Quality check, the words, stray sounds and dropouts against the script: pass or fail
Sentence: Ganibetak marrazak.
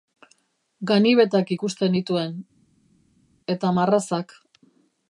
fail